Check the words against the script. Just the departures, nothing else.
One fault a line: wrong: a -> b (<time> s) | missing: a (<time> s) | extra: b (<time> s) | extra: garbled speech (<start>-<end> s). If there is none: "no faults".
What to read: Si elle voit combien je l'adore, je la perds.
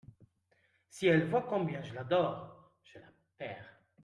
no faults